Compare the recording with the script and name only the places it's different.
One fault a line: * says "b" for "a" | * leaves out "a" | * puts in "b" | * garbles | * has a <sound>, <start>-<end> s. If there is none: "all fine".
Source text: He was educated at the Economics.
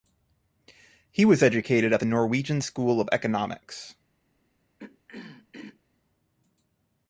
* puts in "Norwegian School of"
* has a throat clearing, 4.8-5.8 s